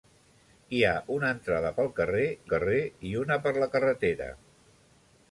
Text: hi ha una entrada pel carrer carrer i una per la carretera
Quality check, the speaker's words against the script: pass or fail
pass